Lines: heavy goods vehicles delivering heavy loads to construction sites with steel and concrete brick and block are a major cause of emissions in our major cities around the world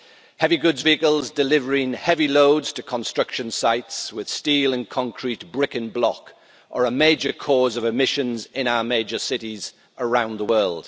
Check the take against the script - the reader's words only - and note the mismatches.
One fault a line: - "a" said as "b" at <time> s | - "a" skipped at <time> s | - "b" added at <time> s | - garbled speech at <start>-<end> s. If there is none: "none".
none